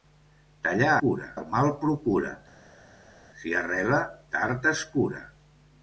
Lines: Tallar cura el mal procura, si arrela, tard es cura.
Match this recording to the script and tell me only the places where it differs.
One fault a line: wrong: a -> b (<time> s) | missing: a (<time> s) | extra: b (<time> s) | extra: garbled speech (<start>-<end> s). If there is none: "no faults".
no faults